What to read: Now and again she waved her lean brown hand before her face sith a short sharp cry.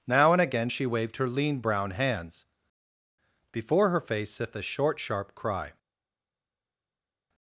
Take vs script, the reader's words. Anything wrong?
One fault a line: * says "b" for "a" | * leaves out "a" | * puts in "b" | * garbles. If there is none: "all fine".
* says "hands" for "hand"